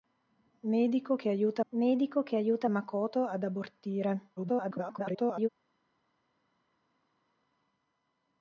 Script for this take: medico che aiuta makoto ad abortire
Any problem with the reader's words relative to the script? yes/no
yes